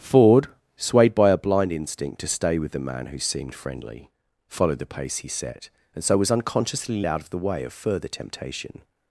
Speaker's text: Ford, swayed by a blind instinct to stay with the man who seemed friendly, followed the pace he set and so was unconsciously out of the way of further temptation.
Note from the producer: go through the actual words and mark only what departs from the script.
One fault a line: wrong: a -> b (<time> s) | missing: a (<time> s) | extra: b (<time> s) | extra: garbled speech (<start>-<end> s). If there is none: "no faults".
no faults